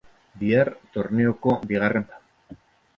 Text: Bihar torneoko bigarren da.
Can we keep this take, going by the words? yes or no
yes